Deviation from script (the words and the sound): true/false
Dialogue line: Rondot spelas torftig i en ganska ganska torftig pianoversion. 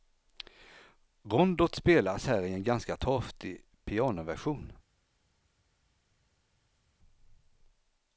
true